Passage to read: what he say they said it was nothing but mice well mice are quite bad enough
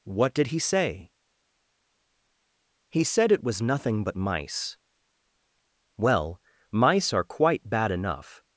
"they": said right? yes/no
no